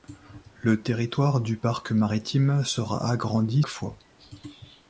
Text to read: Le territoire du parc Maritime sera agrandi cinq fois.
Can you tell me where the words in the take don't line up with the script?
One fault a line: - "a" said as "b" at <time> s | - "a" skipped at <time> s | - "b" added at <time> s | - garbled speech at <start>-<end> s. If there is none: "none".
- "cinq" skipped at 3.6 s